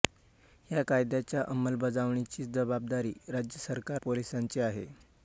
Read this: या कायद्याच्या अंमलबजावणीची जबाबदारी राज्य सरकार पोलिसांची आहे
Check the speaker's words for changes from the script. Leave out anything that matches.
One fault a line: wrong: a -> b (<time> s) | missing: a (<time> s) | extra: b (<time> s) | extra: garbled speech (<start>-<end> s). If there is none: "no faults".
no faults